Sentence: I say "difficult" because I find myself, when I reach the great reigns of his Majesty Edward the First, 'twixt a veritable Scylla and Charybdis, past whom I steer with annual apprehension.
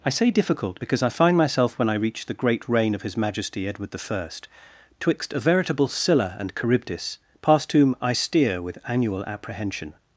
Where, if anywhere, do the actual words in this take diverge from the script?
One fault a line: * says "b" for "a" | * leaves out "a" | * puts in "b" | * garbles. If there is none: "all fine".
* says "reign" for "reigns"